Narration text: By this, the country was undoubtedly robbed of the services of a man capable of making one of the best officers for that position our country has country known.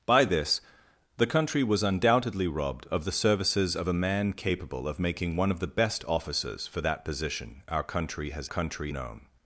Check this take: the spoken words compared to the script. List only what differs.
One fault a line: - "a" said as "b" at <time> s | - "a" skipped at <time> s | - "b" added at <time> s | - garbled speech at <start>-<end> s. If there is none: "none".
none